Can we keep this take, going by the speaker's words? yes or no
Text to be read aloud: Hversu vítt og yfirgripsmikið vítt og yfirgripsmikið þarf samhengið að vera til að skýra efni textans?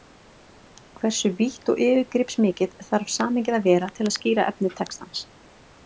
no